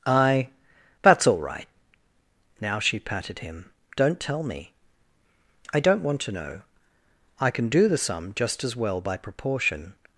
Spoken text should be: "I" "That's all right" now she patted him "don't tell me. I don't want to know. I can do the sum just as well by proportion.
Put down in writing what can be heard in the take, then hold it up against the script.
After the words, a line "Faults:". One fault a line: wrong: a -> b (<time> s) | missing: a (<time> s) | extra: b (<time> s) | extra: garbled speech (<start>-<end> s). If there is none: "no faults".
"I" "That's all right" now she patted him "don't tell me. I don't want to know. I can do the sum just as well by proportion.
Faults:
no faults